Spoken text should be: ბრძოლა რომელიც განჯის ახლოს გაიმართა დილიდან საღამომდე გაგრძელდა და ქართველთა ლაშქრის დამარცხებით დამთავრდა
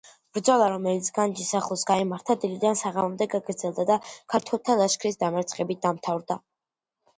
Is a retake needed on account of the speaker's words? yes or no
no